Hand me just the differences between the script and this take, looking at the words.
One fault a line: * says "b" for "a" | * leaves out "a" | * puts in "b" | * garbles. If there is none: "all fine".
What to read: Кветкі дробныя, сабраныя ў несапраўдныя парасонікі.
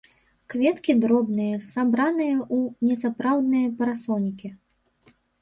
all fine